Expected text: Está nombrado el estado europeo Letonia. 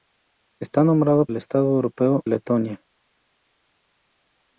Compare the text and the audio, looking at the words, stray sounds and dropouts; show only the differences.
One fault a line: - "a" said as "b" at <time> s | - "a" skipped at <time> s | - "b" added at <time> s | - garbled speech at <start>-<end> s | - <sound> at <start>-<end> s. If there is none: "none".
none